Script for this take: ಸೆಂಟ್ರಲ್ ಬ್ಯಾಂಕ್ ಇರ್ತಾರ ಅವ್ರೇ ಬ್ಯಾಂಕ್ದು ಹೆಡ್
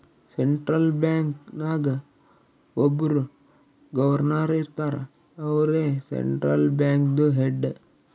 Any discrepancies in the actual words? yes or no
yes